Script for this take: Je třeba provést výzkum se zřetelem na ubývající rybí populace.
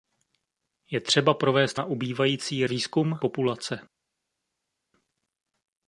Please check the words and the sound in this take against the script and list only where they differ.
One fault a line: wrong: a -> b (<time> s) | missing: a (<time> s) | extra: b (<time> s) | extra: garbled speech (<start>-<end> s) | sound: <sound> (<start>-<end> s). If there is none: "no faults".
missing: výzkum se zřetelem (1.8 s)
wrong: rybí -> výzkum (2.7 s)